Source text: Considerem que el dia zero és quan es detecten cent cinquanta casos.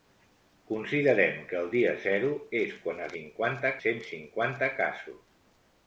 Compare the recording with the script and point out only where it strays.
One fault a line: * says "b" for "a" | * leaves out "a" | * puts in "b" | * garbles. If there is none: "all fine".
* says "cinquanta" for "detecten"